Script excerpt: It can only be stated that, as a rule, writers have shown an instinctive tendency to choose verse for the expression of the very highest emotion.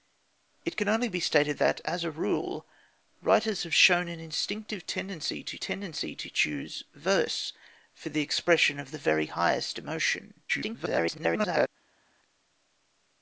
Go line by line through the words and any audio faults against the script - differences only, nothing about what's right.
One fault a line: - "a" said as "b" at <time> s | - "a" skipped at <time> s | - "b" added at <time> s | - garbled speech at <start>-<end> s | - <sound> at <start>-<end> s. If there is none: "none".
- "tendency to" added at 5.6 s
- garbled speech at 10.5-11.7 s